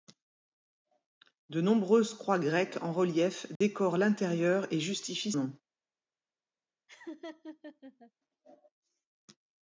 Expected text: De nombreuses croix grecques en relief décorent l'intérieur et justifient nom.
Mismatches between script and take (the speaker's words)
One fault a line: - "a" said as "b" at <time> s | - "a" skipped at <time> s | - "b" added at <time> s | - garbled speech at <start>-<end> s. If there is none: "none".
none